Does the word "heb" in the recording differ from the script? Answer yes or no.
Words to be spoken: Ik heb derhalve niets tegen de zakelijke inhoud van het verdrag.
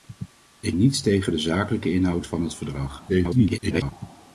yes